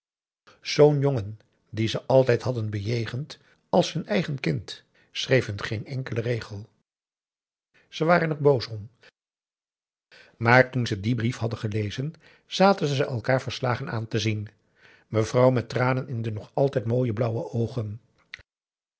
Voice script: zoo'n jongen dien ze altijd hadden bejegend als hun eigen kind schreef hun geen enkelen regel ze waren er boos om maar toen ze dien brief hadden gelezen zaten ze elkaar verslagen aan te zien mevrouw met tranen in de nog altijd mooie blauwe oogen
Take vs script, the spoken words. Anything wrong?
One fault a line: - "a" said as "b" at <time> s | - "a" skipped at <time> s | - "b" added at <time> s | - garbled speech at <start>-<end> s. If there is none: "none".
none